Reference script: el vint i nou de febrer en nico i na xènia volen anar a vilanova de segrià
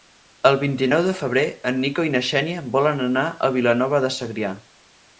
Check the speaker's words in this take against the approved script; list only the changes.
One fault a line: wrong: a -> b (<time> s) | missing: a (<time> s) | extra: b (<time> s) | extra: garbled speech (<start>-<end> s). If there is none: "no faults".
no faults